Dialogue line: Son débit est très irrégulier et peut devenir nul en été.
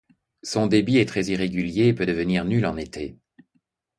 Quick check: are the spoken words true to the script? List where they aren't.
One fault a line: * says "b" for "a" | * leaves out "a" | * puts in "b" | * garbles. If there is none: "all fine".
all fine